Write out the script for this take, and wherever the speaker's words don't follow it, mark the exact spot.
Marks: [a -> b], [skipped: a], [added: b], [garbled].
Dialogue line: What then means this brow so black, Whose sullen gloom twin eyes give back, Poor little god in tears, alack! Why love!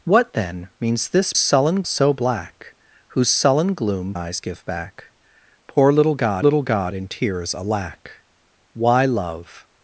What then means this [brow -> sullen] so black, Whose sullen gloom [skipped: twin] eyes give back, Poor little god [added: little god] in tears, alack! Why love!